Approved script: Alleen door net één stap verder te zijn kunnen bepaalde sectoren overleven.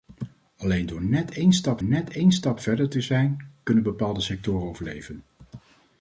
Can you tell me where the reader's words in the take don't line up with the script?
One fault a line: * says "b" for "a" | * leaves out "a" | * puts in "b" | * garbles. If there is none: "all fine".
* puts in "net één stap"